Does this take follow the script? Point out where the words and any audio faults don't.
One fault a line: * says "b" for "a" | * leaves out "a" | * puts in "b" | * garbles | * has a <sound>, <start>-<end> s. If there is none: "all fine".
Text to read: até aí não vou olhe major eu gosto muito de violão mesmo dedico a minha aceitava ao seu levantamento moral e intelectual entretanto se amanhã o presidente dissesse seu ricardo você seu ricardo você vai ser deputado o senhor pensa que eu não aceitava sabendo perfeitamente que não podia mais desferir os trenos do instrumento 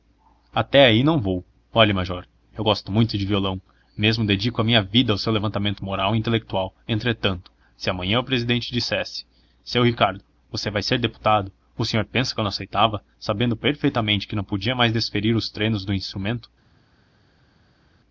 * says "vida" for "aceitava"
* leaves out "seu ricardo você"